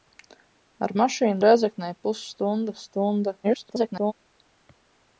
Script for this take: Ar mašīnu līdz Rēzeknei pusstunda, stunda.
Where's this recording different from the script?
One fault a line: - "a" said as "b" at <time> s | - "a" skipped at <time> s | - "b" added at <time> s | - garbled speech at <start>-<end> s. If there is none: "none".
- "līdz" skipped at 1.4 s
- garbled speech at 3.4-4.1 s